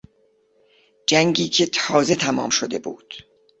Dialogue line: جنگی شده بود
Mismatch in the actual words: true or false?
true